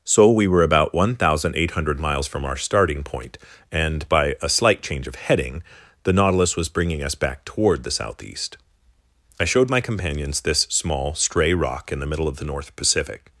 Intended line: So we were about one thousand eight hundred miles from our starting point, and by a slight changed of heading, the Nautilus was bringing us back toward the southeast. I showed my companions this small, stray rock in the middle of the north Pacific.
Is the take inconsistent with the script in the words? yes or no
yes